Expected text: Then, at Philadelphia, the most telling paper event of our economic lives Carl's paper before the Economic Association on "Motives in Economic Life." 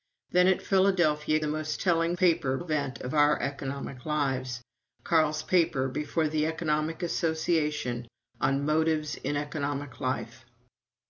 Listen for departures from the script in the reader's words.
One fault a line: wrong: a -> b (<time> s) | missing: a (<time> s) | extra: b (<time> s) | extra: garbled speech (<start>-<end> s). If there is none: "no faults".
no faults